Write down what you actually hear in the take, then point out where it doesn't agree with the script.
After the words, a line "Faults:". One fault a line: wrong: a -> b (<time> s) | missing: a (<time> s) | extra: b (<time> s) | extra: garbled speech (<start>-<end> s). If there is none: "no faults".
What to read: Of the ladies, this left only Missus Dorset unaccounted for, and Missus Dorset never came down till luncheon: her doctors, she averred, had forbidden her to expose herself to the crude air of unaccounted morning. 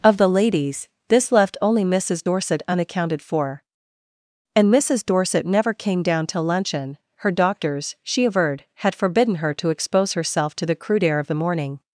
Of the ladies, this left only Missus Dorset unaccounted for, and Missus Dorset never came down till luncheon: her doctors, she averred, had forbidden her to expose herself to the crude air of the morning.
Faults:
wrong: unaccounted -> the (11.3 s)